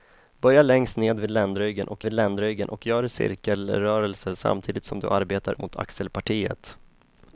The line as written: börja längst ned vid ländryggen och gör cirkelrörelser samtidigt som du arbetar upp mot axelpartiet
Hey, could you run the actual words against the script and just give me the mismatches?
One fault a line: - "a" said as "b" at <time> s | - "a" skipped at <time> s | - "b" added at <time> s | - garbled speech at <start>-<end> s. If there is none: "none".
- "vid ländryggen och" added at 2.0 s
- "upp" skipped at 5.6 s